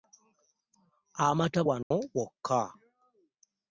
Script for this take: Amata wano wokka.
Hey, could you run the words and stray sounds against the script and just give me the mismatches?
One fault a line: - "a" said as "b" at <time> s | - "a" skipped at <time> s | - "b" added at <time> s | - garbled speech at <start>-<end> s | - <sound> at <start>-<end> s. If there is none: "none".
- dropout at 1.8-1.9 s